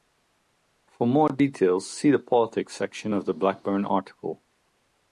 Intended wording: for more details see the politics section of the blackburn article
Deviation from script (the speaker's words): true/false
false